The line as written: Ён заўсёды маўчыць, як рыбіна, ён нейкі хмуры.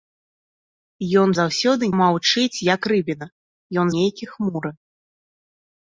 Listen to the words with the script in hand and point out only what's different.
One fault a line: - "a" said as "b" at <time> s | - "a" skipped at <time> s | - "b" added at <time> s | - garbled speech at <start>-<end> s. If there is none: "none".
none